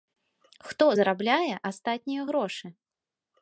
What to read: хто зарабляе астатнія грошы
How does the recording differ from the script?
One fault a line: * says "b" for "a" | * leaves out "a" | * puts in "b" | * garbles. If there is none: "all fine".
all fine